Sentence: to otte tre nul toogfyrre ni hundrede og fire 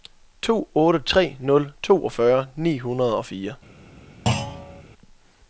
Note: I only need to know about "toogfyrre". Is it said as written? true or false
true